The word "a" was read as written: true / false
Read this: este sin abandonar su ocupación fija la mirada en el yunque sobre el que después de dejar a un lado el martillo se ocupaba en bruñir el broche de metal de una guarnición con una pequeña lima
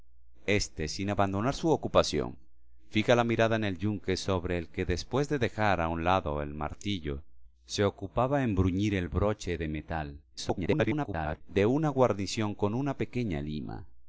true